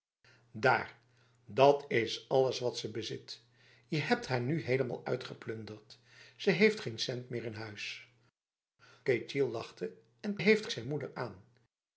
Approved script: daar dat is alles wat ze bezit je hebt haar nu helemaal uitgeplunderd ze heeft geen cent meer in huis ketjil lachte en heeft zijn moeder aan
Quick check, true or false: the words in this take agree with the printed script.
true